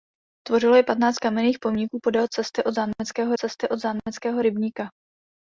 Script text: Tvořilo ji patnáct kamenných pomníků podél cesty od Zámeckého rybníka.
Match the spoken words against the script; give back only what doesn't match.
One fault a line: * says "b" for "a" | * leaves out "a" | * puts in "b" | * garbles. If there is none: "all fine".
* puts in "cesty od Zámeckého"